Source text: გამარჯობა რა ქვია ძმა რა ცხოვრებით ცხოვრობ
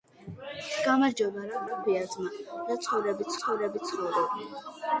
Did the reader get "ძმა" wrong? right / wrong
right